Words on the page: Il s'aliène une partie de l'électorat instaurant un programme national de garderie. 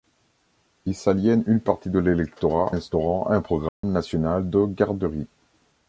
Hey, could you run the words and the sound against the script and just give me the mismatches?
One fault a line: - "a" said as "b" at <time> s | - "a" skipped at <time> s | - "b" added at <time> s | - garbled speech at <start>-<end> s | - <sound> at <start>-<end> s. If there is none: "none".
- dropout at 3.7-3.8 s